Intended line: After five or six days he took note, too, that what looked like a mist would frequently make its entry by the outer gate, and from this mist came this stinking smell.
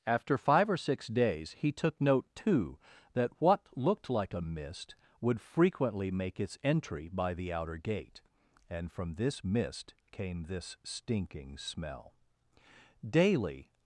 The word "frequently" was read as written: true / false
true